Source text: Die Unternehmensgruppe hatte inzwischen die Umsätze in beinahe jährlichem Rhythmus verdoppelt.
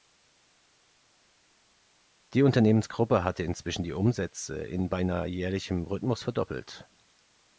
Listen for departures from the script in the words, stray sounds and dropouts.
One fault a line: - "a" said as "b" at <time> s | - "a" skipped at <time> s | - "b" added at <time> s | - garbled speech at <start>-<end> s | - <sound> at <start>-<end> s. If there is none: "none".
none